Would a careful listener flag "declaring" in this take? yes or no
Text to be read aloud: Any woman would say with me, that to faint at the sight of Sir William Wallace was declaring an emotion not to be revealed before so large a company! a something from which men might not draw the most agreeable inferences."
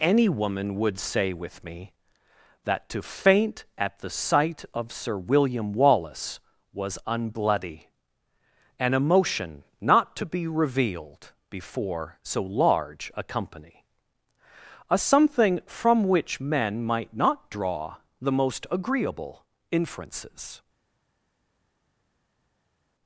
yes